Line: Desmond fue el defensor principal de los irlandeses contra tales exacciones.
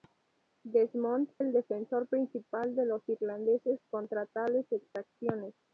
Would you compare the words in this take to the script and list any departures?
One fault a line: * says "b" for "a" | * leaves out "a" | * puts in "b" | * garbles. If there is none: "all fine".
* leaves out "fue"